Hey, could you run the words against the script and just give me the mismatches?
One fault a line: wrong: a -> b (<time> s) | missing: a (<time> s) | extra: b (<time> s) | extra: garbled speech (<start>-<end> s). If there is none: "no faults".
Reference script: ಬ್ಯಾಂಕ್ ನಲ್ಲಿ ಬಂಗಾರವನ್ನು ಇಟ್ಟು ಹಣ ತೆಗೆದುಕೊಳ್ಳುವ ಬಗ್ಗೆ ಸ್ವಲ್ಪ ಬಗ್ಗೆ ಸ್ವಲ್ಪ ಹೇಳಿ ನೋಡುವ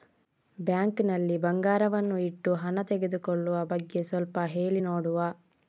missing: ಬಗ್ಗೆ ಸ್ವಲ್ಪ (4.4 s)